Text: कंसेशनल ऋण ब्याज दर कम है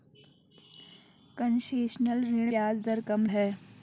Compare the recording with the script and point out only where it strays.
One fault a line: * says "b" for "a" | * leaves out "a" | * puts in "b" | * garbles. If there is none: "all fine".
all fine